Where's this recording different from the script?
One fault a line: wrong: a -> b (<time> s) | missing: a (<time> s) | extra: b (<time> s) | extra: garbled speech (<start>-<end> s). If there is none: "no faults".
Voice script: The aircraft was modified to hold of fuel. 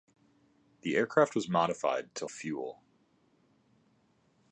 missing: hold of (2.2 s)